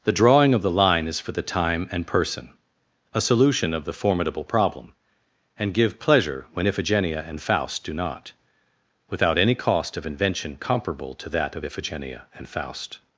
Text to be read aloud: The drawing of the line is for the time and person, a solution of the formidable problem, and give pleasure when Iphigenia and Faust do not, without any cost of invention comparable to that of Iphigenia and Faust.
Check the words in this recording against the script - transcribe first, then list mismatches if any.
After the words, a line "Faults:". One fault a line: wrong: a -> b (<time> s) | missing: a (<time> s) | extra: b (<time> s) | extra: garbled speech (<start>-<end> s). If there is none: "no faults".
The drawing of the line is for the time and person, a solution of the formidable problem, and give pleasure when Iphigenia and Faust do not, without any cost of invention comparable to that of Iphigenia and Faust.
Faults:
no faults